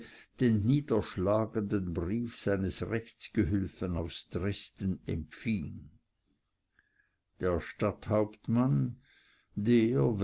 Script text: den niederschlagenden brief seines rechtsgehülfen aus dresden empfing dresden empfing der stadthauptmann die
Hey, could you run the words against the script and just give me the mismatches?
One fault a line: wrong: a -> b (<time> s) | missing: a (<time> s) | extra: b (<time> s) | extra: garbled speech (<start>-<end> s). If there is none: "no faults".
missing: dresden empfing (5.9 s)
wrong: die -> der (9.6 s)